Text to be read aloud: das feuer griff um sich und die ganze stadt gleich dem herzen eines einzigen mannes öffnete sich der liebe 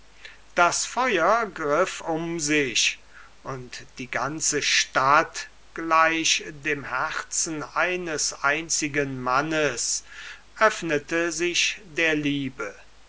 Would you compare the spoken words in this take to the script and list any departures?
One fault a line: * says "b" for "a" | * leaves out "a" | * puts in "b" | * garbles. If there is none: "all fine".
all fine